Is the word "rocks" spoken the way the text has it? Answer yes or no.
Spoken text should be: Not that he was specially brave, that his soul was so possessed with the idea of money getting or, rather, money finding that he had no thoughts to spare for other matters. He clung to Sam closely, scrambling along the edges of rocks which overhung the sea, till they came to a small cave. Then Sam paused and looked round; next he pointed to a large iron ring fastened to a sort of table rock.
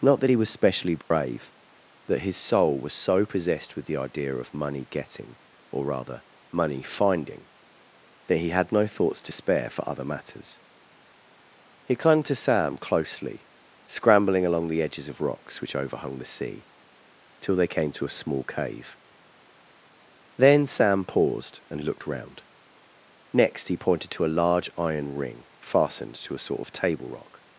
yes